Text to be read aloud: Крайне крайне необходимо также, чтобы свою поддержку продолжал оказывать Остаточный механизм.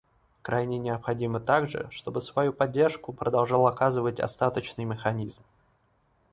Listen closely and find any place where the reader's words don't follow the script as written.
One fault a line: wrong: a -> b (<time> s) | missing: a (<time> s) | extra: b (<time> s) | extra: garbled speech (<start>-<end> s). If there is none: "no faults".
missing: крайне (0.8 s)